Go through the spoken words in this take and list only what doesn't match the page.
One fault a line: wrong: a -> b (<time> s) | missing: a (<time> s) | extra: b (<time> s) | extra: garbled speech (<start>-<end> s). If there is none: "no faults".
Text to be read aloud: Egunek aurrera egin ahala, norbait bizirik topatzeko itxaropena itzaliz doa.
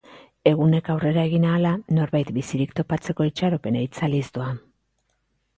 no faults